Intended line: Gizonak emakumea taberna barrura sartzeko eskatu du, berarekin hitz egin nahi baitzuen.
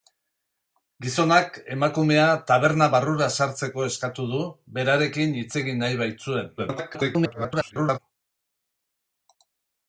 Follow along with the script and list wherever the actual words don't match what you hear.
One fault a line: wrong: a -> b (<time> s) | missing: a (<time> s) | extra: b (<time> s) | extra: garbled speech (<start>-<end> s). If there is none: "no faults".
extra: garbled speech (6.6-8.0 s)